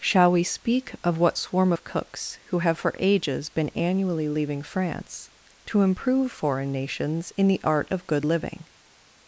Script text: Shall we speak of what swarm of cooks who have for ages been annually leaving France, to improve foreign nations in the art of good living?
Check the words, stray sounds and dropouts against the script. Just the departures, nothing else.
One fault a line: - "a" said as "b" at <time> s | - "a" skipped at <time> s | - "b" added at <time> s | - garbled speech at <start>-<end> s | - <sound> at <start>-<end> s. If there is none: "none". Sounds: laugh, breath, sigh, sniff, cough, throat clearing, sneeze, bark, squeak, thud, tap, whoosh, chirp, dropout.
none